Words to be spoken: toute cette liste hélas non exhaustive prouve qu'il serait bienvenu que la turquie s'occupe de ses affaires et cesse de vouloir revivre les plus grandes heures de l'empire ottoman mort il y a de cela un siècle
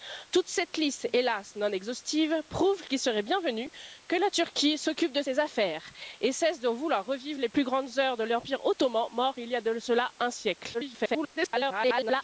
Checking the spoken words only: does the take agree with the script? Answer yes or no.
no